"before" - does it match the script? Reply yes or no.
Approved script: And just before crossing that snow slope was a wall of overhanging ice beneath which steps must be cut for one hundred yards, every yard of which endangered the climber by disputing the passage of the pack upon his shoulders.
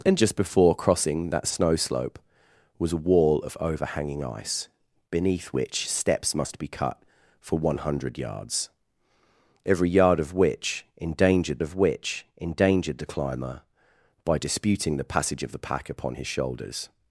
yes